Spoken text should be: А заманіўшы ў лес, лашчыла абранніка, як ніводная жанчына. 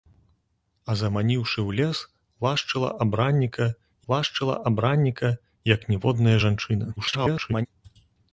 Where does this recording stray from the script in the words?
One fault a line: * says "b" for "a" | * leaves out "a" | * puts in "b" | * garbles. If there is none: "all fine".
* puts in "лашчыла абранніка"
* garbles